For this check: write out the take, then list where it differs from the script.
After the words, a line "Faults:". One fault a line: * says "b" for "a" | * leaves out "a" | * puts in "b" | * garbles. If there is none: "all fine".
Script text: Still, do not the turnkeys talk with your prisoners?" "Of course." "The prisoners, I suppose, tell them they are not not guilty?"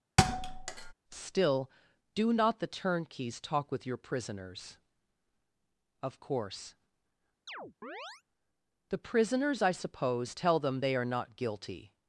Still, do not the turnkeys talk with your prisoners?" "Of course." "The prisoners, I suppose, tell them they are not guilty?"
Faults:
* leaves out "not"